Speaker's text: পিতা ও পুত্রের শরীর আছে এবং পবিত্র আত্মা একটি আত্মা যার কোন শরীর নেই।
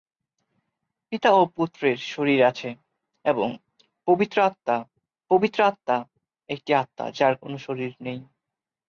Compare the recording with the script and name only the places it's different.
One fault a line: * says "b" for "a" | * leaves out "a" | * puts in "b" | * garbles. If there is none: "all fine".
* puts in "পবিত্র আত্মা"